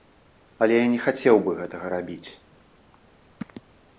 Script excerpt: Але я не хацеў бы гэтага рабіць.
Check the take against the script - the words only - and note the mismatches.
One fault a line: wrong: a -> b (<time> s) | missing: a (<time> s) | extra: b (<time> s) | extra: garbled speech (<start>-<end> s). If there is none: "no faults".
no faults